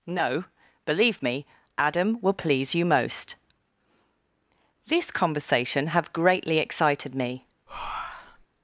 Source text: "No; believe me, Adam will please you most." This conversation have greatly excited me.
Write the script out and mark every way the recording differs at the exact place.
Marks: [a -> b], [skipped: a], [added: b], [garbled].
"No; believe me, Adam will please you most." This conversation have greatly excited me.